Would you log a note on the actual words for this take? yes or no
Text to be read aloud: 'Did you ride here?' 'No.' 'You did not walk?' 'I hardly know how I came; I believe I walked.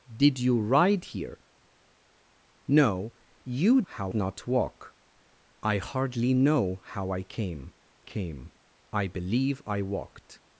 yes